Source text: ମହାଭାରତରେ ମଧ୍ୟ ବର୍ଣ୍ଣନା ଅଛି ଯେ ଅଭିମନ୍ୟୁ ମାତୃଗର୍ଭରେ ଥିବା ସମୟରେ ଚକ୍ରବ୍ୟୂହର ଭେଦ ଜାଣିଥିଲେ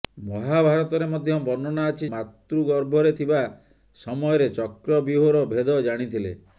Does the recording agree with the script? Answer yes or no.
no